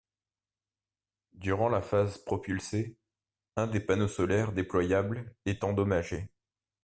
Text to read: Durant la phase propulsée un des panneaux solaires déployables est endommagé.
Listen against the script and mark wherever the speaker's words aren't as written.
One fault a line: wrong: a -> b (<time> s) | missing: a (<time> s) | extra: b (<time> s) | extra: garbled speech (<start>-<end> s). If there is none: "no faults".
no faults